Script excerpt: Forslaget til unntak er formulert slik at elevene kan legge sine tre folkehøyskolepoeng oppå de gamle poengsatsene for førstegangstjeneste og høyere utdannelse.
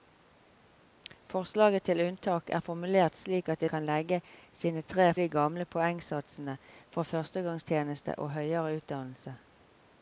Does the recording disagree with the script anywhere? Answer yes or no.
yes